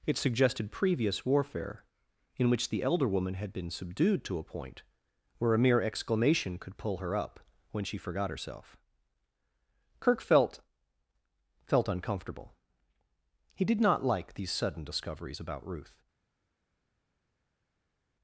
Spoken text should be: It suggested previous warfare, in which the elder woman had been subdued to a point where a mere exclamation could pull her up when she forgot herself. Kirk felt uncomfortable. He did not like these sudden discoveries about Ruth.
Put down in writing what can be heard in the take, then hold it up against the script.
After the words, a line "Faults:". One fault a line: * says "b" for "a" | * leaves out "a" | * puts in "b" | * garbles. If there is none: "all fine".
It suggested previous warfare, in which the elder woman had been subdued to a point where a mere exclamation could pull her up when she forgot herself. Kirk felt felt uncomfortable. He did not like these sudden discoveries about Ruth.
Faults:
* puts in "felt"